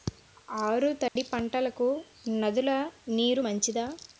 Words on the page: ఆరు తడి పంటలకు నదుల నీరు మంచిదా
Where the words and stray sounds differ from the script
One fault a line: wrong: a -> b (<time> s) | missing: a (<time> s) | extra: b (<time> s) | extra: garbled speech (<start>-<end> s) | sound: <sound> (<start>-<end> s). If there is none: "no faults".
sound: dropout (1.1-1.2 s)